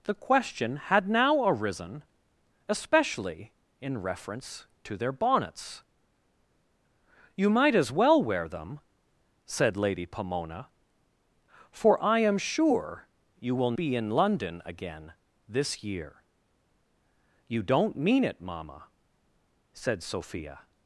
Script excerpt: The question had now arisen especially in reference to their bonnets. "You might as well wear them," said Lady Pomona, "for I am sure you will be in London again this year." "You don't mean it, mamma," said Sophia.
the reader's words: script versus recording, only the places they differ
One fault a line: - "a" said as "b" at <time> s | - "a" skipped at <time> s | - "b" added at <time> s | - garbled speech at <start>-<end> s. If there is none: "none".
none